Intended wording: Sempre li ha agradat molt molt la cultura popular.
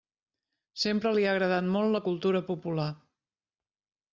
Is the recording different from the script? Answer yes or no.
yes